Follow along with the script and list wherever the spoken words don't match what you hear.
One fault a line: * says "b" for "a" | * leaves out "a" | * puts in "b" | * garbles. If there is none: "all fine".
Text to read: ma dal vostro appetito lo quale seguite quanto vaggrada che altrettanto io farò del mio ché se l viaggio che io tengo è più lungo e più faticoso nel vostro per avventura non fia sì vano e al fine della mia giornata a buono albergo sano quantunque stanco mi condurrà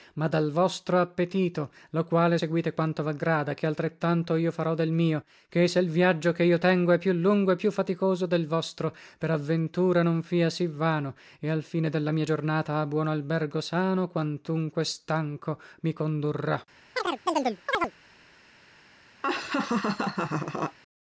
* says "del" for "nel"